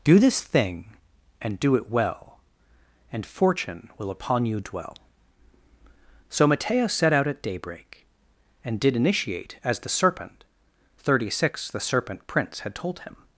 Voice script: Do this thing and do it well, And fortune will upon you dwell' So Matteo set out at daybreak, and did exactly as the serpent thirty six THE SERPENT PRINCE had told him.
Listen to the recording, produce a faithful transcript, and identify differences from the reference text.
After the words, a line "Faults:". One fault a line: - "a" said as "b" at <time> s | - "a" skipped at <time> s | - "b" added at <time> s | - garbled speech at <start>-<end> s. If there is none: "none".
Do this thing and do it well, And fortune will upon you dwell' So Matteo set out at daybreak, and did initiate as the serpent thirty six THE SERPENT PRINCE had told him.
Faults:
- "exactly" said as "initiate" at 8.9 s